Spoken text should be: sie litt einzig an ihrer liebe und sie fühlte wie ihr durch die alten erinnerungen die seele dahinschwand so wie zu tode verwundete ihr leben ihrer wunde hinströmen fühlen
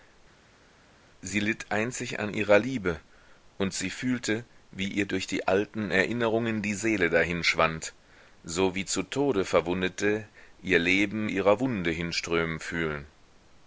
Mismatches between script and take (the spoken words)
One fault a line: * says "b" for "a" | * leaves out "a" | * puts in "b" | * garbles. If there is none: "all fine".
all fine